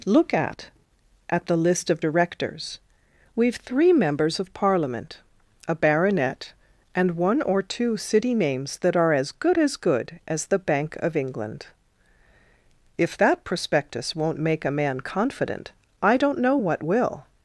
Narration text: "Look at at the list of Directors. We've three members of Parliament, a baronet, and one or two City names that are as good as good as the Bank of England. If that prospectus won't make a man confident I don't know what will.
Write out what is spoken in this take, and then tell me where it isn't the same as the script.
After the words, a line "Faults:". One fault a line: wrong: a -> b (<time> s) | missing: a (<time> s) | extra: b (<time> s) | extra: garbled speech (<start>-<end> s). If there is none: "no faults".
"Look at at the list of Directors. We've three members of Parliament, a baronet, and one or two City names that are as good as good as the Bank of England. If that prospectus won't make a man confident I don't know what will.
Faults:
no faults